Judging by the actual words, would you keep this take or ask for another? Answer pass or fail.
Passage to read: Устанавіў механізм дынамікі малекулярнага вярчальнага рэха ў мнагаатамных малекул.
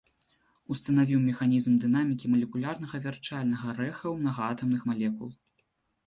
pass